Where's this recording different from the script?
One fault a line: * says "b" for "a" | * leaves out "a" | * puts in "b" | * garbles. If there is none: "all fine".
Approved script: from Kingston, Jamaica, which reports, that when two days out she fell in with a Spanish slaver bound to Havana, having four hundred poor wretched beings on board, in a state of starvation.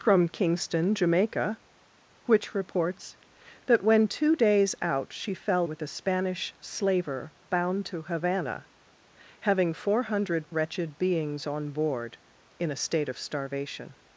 * leaves out "in"
* leaves out "poor"